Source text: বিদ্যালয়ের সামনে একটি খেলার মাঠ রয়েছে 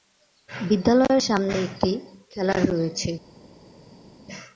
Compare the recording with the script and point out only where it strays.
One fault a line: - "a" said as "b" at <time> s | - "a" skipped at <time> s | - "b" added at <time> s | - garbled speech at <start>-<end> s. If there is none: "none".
- "মাঠ" skipped at 2.6 s